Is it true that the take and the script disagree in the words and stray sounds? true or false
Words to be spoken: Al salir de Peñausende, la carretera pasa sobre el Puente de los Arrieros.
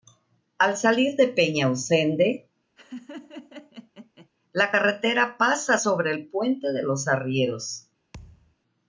true